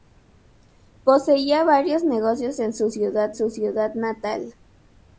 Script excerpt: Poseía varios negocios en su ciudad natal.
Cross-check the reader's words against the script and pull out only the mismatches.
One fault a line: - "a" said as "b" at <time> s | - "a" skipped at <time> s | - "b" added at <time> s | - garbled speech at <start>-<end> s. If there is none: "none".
- "su ciudad" added at 3.3 s